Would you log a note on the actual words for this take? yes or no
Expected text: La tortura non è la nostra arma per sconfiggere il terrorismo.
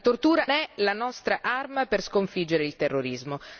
yes